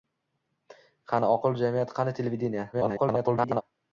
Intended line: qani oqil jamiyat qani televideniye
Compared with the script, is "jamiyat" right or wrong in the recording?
right